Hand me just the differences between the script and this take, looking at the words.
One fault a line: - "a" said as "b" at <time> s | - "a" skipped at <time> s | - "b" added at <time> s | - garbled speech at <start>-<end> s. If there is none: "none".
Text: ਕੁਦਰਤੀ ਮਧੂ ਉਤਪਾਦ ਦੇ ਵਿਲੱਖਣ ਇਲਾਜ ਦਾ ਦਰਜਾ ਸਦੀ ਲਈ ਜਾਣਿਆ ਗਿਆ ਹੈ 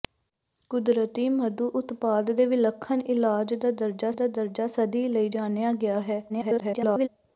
- "ਦਾ ਦਰਜਾ" added at 4.1 s
- garbled speech at 6.3-7.1 s